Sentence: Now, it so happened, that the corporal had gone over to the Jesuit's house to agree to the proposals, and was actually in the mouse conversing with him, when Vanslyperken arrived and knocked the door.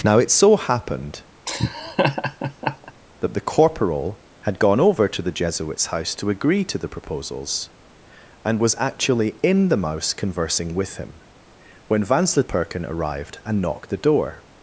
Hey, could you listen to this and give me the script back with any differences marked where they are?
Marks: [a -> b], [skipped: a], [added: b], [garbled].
Now, it so happened, that the corporal had gone over to the Jesuit's house to agree to the proposals, and was actually in the mouse conversing with him, when Vanslyperken arrived and knocked the door.